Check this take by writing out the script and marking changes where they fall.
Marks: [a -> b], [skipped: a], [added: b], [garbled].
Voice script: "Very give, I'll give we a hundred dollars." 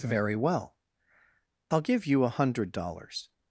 "Very [give, -> well] I'll give [we -> you] a hundred dollars."